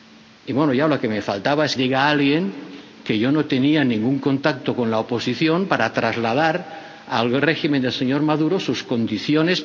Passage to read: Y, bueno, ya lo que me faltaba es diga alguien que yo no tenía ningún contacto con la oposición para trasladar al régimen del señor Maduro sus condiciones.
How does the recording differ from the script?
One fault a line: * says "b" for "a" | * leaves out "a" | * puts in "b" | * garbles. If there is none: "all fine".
all fine